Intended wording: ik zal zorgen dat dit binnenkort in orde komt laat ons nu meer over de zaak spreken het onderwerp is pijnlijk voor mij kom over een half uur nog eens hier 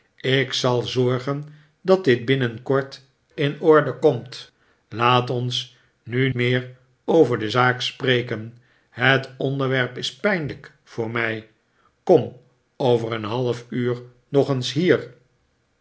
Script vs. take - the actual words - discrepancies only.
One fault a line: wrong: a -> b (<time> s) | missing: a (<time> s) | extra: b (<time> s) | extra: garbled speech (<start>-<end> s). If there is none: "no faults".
no faults